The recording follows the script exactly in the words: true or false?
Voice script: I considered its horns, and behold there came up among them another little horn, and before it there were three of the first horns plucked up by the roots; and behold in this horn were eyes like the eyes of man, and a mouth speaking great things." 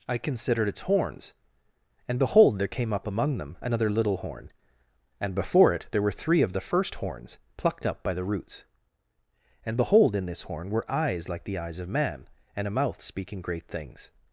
true